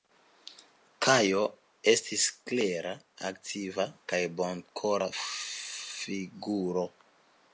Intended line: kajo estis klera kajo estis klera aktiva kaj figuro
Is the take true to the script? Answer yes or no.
no